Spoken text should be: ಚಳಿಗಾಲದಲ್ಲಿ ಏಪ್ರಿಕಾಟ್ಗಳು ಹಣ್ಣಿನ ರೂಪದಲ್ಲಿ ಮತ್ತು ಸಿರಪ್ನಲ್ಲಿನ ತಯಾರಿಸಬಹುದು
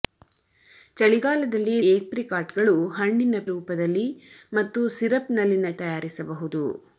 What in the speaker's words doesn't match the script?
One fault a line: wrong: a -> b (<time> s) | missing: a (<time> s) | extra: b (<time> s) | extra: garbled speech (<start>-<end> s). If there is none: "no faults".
no faults